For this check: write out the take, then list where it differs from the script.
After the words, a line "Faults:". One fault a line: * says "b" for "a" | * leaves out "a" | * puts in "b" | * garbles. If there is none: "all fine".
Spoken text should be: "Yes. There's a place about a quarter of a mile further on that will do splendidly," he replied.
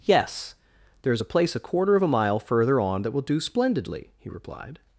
"Yes. There's a place a quarter of a mile further on that will do splendidly," he replied.
Faults:
* leaves out "about"